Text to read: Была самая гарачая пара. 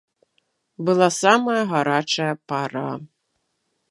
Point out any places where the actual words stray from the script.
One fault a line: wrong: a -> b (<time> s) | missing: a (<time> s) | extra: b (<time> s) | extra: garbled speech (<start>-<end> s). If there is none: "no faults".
no faults